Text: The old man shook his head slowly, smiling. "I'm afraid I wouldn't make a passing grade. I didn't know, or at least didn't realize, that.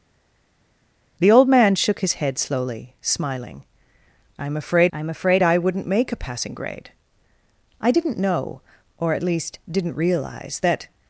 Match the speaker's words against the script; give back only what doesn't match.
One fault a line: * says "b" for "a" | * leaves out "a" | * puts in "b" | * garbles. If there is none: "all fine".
* puts in "I'm afraid"